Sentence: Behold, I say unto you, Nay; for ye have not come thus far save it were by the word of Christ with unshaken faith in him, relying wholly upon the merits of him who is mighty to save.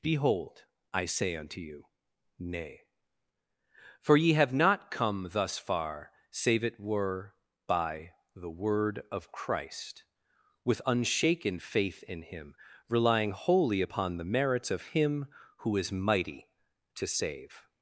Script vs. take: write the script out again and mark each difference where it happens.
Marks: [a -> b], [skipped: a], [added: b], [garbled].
Behold, I say unto you, Nay; for ye have not come thus far save it were by the word of Christ with unshaken faith in him, relying wholly upon the merits of him who is mighty to save.